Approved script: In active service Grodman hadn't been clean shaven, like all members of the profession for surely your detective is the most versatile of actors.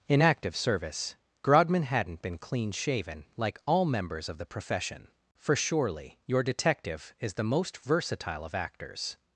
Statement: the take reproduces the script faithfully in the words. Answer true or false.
true